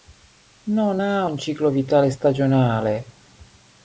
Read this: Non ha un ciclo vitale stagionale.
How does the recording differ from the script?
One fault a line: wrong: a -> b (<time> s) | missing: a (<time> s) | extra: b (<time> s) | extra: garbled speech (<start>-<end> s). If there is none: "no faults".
no faults